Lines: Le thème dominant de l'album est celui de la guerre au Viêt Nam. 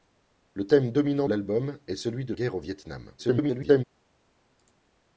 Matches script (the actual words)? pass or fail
fail